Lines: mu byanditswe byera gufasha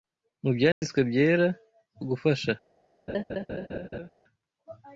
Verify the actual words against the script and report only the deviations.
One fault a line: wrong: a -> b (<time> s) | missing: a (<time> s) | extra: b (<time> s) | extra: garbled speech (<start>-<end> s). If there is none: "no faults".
no faults